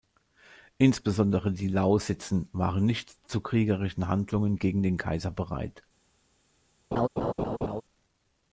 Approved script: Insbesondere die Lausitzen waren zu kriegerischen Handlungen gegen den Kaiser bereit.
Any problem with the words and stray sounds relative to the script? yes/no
yes